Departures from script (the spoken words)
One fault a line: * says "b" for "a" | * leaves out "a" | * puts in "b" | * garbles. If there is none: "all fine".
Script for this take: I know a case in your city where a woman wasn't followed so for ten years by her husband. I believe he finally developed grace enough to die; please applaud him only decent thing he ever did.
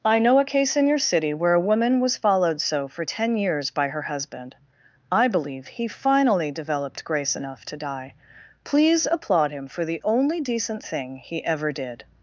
* says "was" for "wasn't"
* puts in "for the"